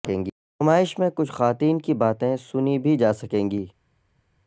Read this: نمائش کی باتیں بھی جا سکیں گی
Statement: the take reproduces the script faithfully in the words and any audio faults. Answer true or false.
false